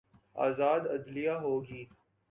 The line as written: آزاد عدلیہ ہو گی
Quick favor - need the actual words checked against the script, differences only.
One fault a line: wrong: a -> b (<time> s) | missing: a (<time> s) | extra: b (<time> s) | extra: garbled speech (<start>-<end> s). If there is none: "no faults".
no faults